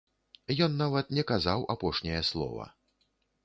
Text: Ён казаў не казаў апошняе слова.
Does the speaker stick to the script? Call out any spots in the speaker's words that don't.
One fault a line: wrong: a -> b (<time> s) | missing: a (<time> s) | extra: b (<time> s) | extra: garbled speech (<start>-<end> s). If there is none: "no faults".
wrong: казаў -> нават (0.8 s)